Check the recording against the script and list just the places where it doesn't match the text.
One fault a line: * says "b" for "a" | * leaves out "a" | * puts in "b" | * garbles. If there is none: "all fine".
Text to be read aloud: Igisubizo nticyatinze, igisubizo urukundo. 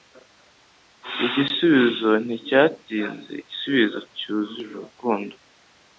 * puts in "cyuzuye"